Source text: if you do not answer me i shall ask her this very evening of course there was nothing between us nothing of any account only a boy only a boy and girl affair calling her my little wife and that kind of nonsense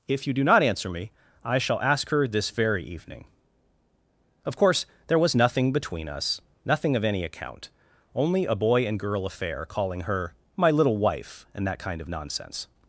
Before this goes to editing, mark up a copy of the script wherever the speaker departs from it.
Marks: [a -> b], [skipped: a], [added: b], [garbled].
if you do not answer me i shall ask her this very evening of course there was nothing between us nothing of any account only a boy [skipped: only a boy] and girl affair calling her my little wife and that kind of nonsense